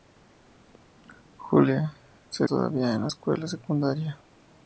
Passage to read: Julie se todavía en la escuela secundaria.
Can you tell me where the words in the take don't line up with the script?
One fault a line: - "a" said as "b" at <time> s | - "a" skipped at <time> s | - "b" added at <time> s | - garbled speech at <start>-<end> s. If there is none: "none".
none